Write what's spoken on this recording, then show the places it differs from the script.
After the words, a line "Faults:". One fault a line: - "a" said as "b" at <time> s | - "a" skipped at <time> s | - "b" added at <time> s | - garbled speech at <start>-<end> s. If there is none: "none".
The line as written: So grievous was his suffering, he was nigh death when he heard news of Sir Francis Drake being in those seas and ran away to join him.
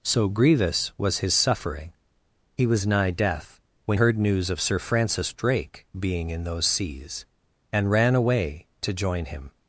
So grievous was his suffering, he was nigh death when heard news of Sir Francis Drake being in those seas and ran away to join him.
Faults:
- "he" skipped at 4.0 s